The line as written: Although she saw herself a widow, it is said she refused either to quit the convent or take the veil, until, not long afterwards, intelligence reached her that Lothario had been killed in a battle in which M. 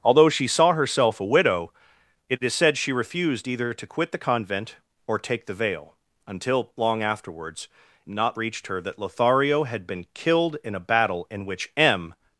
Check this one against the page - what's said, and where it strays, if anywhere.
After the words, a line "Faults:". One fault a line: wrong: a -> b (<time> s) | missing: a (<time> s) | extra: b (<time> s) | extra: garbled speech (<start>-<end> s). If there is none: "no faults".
Although she saw herself a widow, it is said she refused either to quit the convent or take the veil, until, long afterwards, not reached her that Lothario had been killed in a battle in which M.
Faults:
missing: not (6.7 s)
wrong: intelligence -> not (8.1 s)